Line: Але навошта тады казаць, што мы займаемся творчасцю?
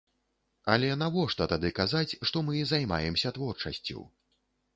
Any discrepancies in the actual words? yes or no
no